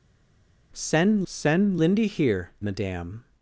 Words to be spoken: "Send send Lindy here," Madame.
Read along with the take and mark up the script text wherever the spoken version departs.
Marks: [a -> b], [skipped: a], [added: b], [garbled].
"Send send Lindy here," Madame.